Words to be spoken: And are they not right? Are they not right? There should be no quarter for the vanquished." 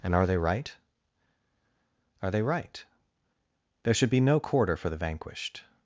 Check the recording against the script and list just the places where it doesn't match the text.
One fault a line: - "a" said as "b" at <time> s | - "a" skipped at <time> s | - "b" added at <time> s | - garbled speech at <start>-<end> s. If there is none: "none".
- "not" skipped at 0.4 s
- "not" skipped at 2.4 s